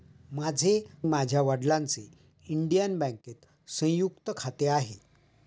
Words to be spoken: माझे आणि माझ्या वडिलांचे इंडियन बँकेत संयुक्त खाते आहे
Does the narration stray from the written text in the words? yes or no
yes